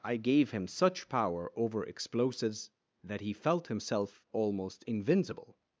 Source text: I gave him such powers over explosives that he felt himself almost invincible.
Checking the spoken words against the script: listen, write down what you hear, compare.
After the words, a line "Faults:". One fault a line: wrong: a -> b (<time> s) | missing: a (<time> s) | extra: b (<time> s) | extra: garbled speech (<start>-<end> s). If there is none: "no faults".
I gave him such power over explosives that he felt himself almost invincible.
Faults:
wrong: powers -> power (1.1 s)